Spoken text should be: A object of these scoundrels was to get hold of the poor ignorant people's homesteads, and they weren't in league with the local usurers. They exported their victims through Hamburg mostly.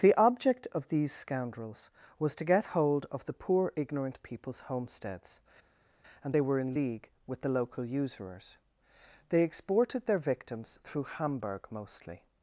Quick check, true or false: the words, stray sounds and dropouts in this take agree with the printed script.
false